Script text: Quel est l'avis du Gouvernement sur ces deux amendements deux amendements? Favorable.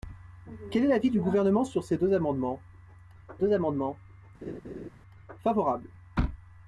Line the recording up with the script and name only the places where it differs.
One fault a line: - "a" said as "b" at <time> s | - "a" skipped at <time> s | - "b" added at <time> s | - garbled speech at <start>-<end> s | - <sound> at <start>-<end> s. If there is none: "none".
- laugh at 4.4-4.9 s